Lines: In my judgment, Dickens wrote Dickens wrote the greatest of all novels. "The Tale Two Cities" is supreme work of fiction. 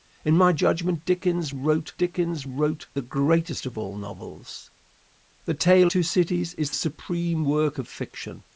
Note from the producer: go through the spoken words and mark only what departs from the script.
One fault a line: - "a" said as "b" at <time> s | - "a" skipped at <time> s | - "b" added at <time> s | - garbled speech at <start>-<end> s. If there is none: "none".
none